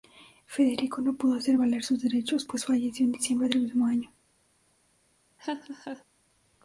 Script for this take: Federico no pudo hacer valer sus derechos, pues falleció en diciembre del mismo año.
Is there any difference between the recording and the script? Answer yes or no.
no